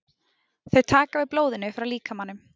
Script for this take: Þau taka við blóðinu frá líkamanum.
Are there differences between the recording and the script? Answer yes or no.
no